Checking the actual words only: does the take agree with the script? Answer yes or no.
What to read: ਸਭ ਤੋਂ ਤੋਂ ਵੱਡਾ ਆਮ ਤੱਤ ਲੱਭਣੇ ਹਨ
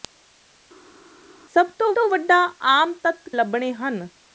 yes